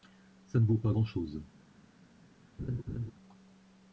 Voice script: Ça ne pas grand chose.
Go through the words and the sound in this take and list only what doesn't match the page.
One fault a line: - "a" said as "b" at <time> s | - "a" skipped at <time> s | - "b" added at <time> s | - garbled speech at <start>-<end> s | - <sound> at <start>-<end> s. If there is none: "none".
- "vaut" added at 0.7 s
- laugh at 2.6-3.1 s